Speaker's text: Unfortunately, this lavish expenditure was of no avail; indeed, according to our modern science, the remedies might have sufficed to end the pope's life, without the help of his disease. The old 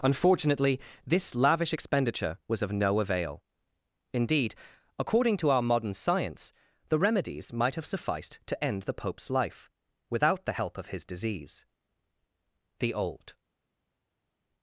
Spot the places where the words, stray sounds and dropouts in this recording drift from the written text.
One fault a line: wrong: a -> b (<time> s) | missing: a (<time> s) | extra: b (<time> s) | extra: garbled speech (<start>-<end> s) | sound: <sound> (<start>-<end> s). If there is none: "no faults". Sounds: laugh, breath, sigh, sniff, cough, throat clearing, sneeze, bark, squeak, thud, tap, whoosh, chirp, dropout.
no faults